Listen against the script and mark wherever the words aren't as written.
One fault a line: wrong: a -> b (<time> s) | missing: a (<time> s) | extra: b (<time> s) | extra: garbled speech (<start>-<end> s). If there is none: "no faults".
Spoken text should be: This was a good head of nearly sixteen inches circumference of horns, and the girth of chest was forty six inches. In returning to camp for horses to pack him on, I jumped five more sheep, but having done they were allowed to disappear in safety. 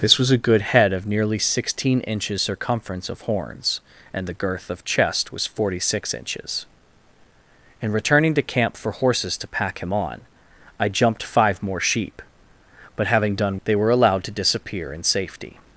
no faults